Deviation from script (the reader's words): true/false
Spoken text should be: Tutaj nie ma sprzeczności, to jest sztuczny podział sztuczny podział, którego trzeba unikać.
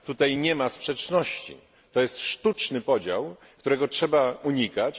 true